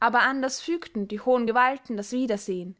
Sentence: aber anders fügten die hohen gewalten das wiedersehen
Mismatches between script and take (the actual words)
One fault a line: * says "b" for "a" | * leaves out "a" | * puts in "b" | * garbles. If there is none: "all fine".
all fine